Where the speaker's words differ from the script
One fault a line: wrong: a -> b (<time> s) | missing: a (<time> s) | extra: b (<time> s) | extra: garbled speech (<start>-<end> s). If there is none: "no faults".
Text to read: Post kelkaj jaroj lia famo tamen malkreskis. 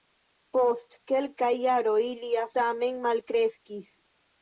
missing: famo (2.5 s)